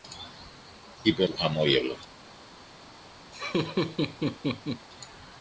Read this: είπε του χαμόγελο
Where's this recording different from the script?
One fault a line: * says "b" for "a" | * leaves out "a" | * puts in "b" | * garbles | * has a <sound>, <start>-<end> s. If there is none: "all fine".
* has a laugh, 3.3-4.9 s